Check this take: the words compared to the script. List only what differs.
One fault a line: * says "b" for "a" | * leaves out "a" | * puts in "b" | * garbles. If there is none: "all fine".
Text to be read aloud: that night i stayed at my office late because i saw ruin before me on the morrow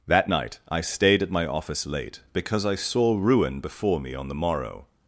all fine